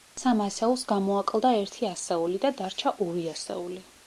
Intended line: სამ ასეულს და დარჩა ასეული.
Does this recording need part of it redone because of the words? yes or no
yes